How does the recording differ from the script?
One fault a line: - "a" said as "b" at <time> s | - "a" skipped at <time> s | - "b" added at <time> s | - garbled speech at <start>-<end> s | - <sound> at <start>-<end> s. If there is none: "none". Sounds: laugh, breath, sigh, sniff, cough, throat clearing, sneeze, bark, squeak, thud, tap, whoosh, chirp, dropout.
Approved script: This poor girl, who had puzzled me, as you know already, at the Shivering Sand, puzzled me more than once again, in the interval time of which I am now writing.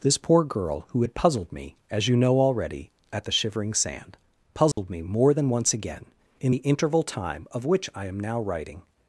- dropout at 4.7-4.8 s